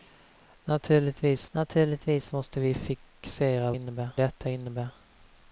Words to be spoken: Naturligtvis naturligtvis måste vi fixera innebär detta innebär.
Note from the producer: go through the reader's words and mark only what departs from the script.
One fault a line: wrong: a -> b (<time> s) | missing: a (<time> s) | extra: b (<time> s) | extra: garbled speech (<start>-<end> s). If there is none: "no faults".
no faults